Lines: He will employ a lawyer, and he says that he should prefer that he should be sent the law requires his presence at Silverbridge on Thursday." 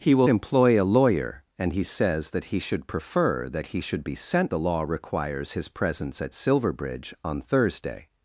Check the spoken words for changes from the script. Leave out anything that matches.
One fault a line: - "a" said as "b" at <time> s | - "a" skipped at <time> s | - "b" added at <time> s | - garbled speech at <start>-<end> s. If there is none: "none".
none